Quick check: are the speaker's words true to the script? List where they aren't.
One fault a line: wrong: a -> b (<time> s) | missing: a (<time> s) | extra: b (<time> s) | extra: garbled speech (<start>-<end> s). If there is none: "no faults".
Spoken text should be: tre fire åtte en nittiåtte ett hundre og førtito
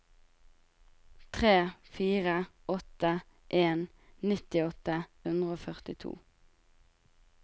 missing: ett (5.0 s)